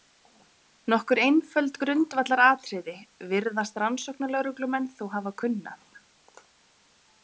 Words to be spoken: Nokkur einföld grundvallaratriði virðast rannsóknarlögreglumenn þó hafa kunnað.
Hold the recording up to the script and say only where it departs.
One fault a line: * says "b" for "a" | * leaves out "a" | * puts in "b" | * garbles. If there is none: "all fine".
all fine